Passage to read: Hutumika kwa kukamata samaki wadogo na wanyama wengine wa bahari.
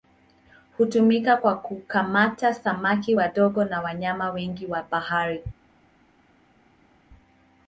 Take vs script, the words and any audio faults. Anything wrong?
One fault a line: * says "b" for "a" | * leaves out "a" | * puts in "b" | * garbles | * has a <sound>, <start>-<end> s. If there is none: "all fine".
all fine